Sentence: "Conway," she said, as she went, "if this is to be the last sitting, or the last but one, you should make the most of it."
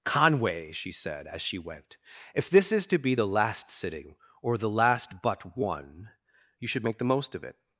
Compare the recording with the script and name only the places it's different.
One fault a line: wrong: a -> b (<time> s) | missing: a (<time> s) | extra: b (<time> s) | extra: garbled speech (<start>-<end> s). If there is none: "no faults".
no faults